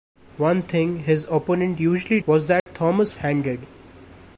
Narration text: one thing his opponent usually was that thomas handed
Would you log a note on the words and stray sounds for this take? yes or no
yes